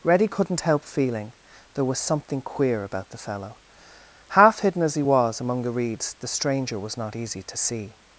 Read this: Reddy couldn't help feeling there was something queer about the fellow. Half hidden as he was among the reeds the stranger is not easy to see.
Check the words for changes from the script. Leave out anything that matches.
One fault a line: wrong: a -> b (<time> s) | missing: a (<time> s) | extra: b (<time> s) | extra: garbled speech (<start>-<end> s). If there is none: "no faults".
wrong: is -> was (6.8 s)